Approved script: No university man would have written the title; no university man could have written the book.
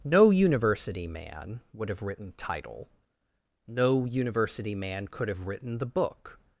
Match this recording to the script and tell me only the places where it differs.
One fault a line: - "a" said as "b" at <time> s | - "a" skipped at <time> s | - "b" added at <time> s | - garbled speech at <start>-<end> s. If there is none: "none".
- "the" skipped at 2.3 s